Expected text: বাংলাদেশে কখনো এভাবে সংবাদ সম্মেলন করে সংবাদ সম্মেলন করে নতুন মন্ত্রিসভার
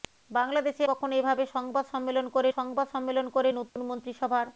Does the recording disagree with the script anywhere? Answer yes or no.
no